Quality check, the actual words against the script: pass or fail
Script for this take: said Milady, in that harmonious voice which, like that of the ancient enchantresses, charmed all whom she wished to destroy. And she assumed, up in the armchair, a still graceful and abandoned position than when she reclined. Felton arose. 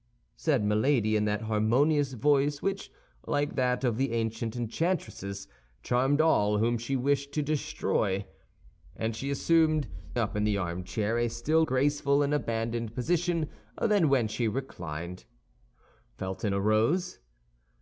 pass